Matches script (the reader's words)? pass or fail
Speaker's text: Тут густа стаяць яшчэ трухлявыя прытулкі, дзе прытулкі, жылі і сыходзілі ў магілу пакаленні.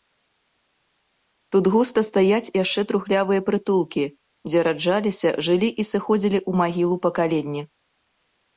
fail